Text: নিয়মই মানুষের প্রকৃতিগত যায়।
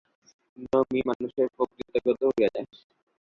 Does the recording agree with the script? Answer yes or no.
no